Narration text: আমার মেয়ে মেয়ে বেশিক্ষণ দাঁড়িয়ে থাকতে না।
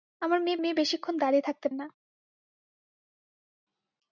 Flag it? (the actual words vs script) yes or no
no